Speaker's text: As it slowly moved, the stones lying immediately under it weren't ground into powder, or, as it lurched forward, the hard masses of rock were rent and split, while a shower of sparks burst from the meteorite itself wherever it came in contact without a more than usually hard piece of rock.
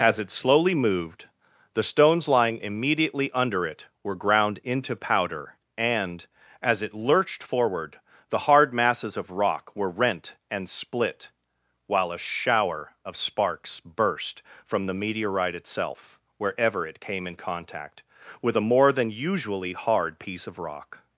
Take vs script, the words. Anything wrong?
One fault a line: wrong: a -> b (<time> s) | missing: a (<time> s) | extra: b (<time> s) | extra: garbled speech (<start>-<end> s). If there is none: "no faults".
wrong: weren't -> were (4.0 s)
wrong: or -> and (5.8 s)
wrong: without -> with (18.4 s)